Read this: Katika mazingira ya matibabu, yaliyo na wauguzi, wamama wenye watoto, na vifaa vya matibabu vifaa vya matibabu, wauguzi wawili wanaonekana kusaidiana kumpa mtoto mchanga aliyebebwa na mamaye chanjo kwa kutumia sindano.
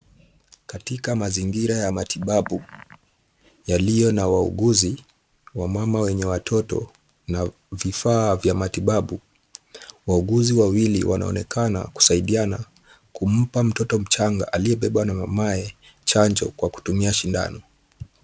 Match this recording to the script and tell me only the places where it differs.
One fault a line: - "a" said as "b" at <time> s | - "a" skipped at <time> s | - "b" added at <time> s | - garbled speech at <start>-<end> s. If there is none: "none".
- "vifaa vya matibabu" skipped at 9.2 s